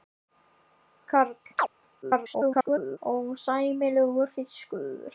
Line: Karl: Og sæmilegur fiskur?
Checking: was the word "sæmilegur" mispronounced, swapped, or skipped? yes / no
no